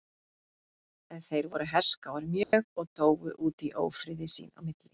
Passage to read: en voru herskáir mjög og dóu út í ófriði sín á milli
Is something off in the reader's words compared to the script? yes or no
yes